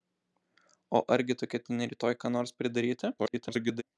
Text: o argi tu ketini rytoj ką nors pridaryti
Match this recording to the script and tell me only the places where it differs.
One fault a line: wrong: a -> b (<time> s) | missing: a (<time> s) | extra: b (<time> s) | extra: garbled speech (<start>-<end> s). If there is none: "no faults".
extra: garbled speech (3.2-3.8 s)